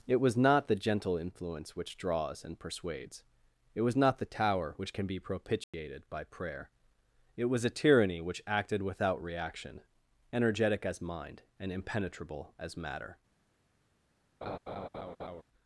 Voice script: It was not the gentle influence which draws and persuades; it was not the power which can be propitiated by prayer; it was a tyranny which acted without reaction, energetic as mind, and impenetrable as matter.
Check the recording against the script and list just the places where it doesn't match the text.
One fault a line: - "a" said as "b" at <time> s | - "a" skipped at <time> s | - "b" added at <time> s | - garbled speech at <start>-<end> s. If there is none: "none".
- "power" said as "tower" at 4.2 s